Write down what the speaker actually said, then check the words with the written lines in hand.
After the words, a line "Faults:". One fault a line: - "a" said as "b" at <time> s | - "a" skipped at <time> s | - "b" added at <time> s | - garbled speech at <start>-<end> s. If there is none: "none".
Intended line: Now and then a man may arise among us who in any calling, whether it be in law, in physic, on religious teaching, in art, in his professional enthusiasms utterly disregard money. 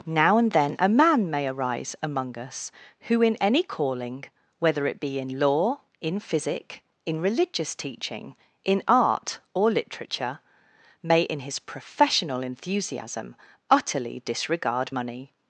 Now and then a man may arise among us who in any calling, whether it be in law, in physic, in religious teaching, in art, or literature, may in his professional enthusiasm utterly disregard money.
Faults:
- "on" said as "in" at 7.0 s
- "or literature may" added at 9.5 s
- "enthusiasms" said as "enthusiasm" at 12.4 s